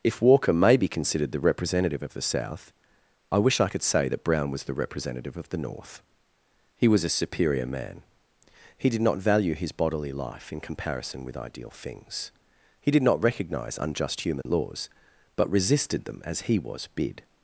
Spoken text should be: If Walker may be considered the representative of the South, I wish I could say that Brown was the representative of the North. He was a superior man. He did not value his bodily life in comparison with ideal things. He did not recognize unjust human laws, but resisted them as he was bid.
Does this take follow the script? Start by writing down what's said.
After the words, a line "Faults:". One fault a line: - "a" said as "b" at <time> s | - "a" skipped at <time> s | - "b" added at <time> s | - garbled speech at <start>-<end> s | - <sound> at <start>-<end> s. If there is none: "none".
If Walker may be considered the representative of the South, I wish I could say that Brown was the representative of the North. He was a superior man. He did not value his bodily life in comparison with ideal things. He did not recognize unjust human laws, but resisted them as he was bid.
Faults:
- dropout at 14.4-14.5 s